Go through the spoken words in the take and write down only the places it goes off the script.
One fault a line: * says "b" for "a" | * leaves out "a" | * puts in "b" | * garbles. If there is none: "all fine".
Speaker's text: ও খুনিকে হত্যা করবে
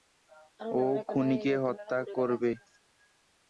all fine